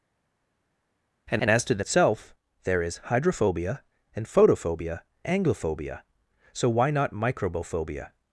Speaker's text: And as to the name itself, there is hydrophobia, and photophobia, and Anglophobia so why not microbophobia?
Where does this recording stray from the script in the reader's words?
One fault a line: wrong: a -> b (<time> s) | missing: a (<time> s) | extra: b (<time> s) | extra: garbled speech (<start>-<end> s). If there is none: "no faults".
extra: and (1.4 s)
missing: name (1.8 s)
missing: and (5.0 s)